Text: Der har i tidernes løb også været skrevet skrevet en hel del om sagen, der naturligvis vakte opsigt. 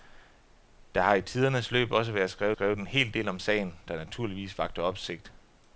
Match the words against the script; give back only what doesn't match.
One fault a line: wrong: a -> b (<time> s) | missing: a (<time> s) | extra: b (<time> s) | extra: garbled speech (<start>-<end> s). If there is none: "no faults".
no faults